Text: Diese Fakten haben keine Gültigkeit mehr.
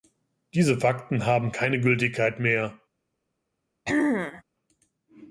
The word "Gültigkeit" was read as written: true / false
true